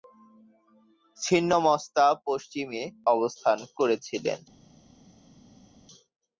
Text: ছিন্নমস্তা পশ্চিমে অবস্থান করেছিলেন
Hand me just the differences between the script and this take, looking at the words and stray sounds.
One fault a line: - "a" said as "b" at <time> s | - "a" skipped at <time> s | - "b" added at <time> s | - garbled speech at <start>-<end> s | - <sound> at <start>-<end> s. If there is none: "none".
none